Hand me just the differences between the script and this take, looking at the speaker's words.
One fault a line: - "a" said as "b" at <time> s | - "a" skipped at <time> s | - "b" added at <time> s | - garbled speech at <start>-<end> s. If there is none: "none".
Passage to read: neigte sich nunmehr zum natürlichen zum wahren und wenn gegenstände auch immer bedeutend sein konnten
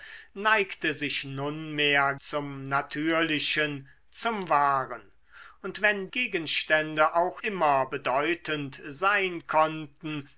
none